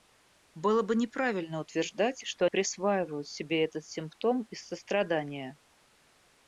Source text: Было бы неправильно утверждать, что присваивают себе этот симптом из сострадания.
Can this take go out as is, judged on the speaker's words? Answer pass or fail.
pass